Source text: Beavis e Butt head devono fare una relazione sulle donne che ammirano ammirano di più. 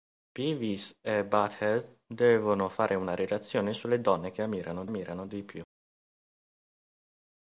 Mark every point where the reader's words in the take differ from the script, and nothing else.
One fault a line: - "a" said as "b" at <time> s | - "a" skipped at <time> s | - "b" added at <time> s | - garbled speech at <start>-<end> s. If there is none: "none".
none